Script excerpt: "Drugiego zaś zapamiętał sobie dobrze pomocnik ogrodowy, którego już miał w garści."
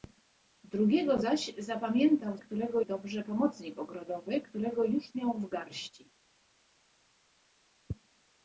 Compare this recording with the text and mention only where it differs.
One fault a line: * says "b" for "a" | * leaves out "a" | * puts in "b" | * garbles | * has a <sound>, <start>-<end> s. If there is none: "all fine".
* says "którego" for "sobie"